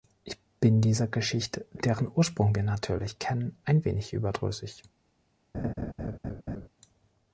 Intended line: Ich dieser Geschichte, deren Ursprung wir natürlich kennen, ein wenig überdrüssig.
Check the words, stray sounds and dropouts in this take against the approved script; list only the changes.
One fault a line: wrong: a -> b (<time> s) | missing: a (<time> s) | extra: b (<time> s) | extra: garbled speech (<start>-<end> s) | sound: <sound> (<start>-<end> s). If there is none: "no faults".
extra: bin (0.6 s)
sound: laugh (5.5-6.7 s)